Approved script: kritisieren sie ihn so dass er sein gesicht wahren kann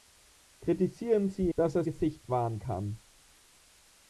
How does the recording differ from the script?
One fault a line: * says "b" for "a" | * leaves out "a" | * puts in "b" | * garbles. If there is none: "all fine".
* leaves out "ihn so"
* leaves out "sein"